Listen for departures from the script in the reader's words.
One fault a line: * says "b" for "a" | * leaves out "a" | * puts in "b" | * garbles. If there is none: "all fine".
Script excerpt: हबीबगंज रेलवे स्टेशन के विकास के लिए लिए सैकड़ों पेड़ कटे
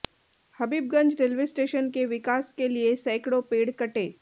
* leaves out "लिए"